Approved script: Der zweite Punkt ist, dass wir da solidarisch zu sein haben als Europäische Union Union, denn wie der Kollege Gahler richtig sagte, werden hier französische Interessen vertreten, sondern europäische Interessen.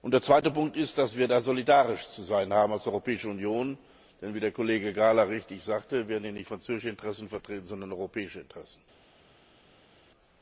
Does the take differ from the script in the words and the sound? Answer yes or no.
yes